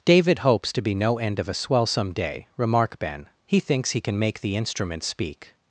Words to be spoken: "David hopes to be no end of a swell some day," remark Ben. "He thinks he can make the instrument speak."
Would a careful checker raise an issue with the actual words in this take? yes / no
no